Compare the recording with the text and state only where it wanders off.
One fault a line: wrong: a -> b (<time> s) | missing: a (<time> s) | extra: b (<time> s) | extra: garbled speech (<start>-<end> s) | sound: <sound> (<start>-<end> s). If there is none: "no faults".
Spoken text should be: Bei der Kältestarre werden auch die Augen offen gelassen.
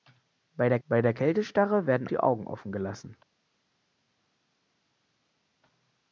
extra: bei der (0.9 s)
missing: auch (2.1 s)